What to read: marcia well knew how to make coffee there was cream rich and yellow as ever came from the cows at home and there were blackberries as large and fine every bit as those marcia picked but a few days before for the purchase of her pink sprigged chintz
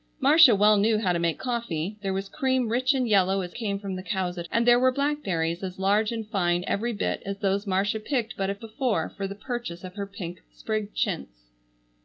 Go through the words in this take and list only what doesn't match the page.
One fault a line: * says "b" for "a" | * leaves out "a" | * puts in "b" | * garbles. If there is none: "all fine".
* leaves out "ever"
* leaves out "home"
* leaves out "few days"